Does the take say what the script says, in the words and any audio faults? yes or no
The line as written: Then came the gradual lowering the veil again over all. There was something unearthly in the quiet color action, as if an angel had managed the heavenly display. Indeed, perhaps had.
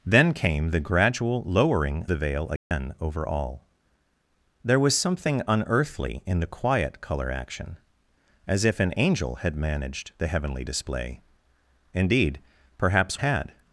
no